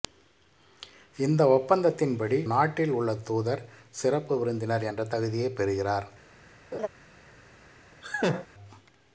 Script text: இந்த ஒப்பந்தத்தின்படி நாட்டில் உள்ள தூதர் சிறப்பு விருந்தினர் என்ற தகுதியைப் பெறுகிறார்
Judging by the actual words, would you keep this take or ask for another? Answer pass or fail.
pass